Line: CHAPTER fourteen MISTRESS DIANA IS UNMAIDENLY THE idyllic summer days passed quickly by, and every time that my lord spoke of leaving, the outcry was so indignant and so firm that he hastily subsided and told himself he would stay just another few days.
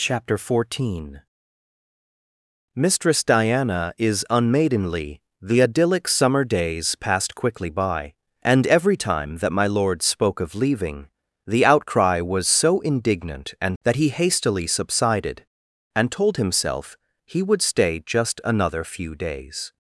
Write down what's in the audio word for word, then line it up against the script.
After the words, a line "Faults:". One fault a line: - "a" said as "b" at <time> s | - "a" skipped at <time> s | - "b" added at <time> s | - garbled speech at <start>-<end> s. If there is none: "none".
CHAPTER fourteen MISTRESS DIANA IS UNMAIDENLY THE idyllic summer days passed quickly by, and every time that my lord spoke of leaving, the outcry was so indignant and that he hastily subsided and told himself he would stay just another few days.
Faults:
- "so firm" skipped at 13.8 s